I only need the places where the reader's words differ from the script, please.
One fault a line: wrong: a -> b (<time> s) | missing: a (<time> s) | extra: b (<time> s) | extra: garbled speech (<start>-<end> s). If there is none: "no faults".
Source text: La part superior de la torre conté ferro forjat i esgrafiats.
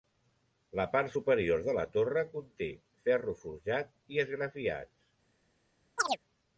no faults